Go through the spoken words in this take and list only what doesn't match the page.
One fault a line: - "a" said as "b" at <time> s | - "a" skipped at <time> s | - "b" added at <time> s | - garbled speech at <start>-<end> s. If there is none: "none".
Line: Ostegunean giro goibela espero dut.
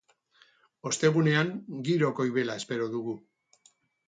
- "dut" said as "dugu" at 3.0 s